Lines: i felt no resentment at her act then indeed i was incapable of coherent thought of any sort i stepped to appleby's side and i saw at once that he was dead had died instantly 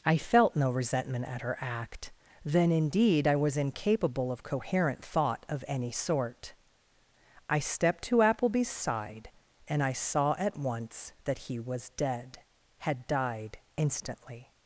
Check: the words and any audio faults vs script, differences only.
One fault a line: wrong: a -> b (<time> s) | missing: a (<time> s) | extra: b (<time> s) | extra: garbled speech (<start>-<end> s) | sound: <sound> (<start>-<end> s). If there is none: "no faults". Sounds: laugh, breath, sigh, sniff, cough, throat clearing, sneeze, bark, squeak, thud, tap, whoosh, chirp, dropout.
no faults